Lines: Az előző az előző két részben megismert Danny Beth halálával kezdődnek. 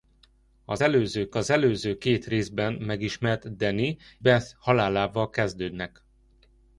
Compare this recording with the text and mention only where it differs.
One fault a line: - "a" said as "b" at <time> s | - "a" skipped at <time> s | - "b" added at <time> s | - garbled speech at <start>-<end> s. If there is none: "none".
none